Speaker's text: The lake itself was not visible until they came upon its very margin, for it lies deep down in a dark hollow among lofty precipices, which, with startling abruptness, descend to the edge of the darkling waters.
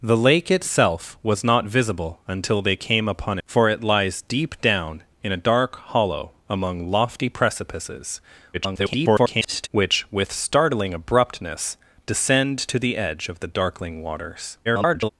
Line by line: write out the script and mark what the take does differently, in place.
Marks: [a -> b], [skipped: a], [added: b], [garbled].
The lake itself was not visible until they came upon [skipped: its very margin,] for it lies deep down in a dark hollow among lofty precipices, [garbled] which, with startling abruptness, descend to the edge of the darkling waters. [garbled]